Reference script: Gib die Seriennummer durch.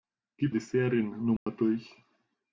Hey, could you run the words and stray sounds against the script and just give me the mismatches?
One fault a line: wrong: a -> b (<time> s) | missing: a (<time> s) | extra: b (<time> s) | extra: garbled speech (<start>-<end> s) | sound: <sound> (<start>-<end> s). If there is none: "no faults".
sound: dropout (1.4-1.5 s)